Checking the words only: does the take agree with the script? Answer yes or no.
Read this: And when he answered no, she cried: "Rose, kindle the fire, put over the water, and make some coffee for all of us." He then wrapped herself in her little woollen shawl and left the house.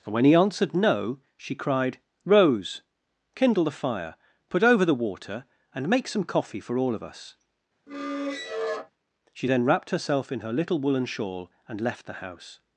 no